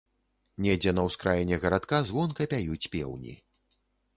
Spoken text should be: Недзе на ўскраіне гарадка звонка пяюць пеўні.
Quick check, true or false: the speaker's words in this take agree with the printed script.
true